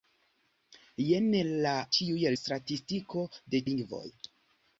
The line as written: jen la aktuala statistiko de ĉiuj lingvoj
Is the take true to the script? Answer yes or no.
no